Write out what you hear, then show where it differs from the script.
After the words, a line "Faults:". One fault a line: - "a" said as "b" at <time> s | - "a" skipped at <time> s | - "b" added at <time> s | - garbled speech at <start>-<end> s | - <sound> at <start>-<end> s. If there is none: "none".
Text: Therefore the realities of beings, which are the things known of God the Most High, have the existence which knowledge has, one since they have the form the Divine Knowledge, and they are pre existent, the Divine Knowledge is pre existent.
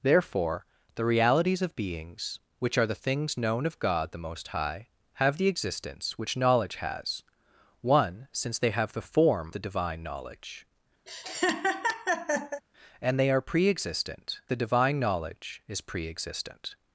Therefore the realities of beings, which are the things known of God the Most High, have the existence which knowledge has, one since they have the form the Divine Knowledge, and they are pre existent, the Divine Knowledge is pre existent.
Faults:
- laugh at 11.1-12.6 s